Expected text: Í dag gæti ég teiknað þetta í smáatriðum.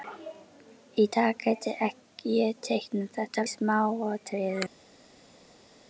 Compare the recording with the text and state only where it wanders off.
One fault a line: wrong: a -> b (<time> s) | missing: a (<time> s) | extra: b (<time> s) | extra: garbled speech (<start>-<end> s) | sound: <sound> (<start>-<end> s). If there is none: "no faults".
no faults